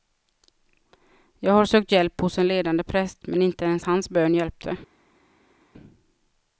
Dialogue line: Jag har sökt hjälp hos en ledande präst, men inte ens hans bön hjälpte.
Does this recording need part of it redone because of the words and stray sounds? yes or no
no